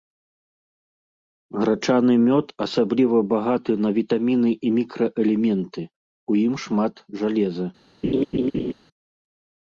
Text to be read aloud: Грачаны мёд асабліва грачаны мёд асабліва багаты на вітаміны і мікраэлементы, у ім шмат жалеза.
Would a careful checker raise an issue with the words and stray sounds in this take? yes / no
yes